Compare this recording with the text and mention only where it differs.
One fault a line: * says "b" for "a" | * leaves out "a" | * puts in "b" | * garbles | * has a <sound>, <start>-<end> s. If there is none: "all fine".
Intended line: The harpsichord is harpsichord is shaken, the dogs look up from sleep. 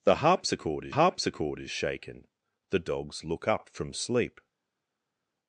all fine